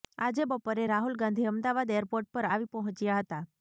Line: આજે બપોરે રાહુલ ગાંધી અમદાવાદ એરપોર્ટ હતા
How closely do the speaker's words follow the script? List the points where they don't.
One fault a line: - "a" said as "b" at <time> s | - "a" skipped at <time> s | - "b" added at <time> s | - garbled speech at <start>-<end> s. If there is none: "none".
- "પર આવી પહોંચ્યા" added at 2.3 s